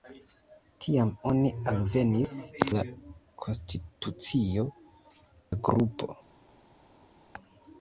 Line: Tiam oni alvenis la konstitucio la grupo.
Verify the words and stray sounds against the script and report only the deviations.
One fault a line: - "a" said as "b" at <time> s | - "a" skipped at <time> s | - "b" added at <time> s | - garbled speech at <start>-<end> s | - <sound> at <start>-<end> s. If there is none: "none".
none